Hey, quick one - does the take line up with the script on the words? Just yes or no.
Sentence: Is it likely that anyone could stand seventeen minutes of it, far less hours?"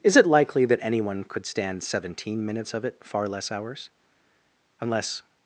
no